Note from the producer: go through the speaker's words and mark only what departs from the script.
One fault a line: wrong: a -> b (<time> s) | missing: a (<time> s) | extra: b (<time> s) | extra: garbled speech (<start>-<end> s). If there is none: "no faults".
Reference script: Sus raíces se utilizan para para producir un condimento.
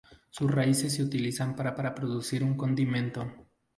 no faults